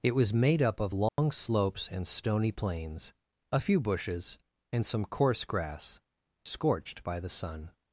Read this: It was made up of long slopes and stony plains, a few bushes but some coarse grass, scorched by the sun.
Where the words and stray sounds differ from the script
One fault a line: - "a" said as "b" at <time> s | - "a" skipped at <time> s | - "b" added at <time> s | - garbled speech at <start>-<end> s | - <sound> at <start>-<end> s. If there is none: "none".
- dropout at 1.1-1.2 s
- "but" said as "and" at 4.7 s